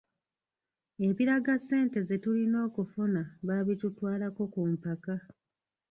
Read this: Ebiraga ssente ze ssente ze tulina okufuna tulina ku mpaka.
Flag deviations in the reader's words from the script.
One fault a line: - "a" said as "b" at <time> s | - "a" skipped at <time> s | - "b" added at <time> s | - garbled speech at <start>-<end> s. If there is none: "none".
- "ssente ze" skipped at 2.2 s
- "tulina" said as "baabitutwalako" at 3.5 s